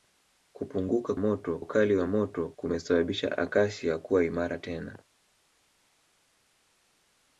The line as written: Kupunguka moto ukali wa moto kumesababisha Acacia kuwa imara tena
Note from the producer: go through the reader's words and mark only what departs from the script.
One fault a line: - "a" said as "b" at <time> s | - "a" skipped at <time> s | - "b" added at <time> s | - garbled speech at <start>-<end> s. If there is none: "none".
none